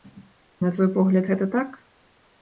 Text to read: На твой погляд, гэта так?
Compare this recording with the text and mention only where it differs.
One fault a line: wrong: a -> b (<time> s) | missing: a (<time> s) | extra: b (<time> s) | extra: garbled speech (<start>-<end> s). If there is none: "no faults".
no faults